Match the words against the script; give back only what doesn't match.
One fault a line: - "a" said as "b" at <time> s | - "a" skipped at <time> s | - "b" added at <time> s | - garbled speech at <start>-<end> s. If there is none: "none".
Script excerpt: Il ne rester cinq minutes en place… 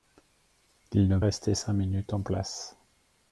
none